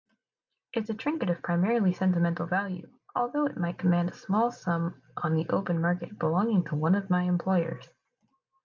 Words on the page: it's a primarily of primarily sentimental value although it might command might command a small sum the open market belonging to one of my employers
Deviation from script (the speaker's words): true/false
true